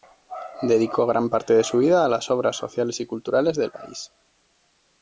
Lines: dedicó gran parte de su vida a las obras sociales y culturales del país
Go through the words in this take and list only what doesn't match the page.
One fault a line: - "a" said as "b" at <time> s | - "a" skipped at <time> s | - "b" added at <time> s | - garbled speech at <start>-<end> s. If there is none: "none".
none